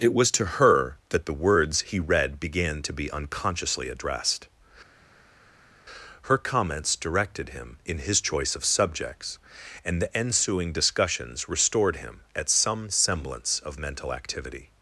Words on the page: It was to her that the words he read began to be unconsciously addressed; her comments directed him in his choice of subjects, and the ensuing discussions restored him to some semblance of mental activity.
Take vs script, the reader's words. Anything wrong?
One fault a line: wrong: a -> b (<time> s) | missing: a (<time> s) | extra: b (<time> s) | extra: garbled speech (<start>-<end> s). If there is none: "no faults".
wrong: to -> at (12.4 s)